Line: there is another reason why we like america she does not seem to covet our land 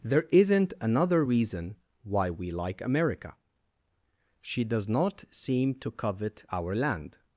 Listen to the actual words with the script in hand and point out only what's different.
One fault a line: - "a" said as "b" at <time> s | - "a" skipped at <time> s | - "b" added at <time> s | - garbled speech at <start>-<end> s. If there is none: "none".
- "is" said as "isn't" at 0.3 s